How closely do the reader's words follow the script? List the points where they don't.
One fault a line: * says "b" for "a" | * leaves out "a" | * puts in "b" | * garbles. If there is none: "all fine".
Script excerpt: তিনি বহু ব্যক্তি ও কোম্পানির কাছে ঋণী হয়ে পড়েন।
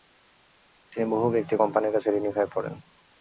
all fine